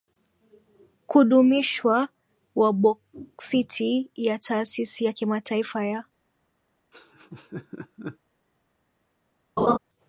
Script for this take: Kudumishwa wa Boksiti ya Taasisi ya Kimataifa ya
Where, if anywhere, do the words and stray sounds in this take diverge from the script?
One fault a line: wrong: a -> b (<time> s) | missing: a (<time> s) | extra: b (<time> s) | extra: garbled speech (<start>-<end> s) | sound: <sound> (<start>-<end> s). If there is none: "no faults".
sound: laugh (6.9-8.2 s)
sound: laugh (9.6-9.8 s)